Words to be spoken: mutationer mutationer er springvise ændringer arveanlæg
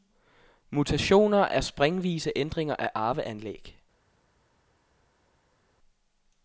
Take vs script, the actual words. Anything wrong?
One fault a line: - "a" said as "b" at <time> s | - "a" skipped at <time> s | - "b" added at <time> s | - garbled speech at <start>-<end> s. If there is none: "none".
- "mutationer" skipped at 1.4 s
- "af" added at 2.8 s